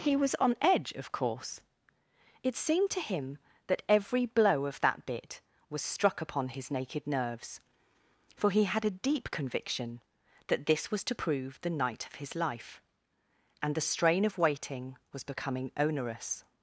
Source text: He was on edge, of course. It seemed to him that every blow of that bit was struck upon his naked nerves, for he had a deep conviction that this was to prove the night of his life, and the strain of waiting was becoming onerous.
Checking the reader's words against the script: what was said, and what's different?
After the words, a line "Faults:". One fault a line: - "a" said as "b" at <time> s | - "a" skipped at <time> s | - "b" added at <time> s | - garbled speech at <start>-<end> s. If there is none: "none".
He was on edge, of course. It seemed to him that every blow of that bit was struck upon his naked nerves, for he had a deep conviction that this was to prove the night of his life, and the strain of waiting was becoming onerous.
Faults:
none